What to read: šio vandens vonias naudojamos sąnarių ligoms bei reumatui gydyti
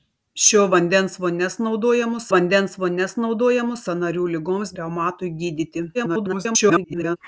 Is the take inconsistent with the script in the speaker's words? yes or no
yes